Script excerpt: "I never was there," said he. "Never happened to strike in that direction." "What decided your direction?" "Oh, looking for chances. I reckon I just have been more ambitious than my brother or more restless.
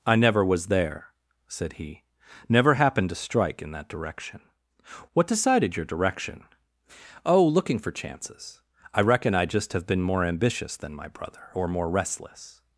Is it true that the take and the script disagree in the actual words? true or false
false